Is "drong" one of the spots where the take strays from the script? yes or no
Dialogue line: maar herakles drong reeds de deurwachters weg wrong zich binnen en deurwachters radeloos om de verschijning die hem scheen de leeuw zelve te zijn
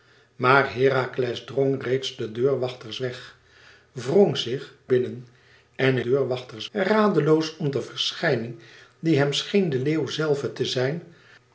no